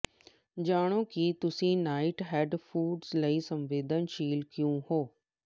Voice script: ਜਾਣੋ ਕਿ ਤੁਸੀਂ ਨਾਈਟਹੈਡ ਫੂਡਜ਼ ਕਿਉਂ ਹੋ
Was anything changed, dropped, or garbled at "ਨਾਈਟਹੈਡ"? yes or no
no